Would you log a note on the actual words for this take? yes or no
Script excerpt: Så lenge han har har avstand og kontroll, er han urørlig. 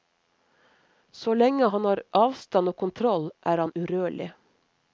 yes